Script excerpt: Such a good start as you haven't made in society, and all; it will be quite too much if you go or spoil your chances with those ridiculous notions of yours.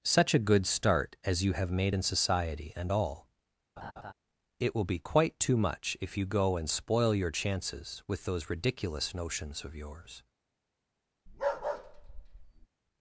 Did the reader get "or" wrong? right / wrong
wrong